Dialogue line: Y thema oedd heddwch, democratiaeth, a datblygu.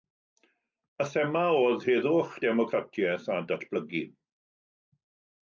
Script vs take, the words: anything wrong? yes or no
no